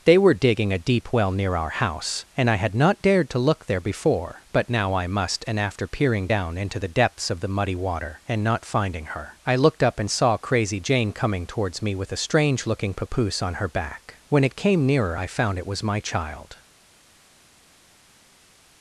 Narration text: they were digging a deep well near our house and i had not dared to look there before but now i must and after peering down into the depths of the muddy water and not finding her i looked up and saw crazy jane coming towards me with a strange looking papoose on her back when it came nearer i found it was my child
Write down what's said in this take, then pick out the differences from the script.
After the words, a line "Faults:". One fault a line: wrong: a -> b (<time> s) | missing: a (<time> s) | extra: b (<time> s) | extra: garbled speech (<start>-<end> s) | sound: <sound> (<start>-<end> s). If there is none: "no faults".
they were digging a deep well near our house and i had not dared to look there before but now i must and after peering down into the depths of the muddy water and not finding her i looked up and saw crazy jane coming towards me with a strange looking papoose on her back when it came nearer i found it was my child
Faults:
no faults